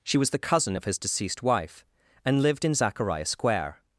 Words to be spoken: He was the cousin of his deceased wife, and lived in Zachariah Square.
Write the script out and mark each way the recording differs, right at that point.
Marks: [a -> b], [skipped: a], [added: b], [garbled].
[He -> She] was the cousin of his deceased wife, and lived in Zachariah Square.